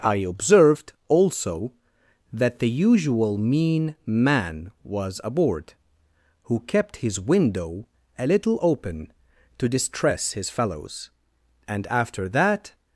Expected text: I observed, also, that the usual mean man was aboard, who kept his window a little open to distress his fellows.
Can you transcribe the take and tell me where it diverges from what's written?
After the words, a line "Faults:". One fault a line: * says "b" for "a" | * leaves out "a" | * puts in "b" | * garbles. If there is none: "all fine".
I observed, also, that the usual mean man was aboard, who kept his window a little open to distress his fellows. And after that
Faults:
* puts in "And after that"